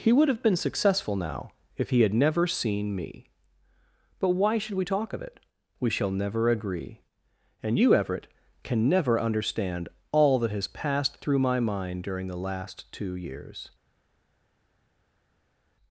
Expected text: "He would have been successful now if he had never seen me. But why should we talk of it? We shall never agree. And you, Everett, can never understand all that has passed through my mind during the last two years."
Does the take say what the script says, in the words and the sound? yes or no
yes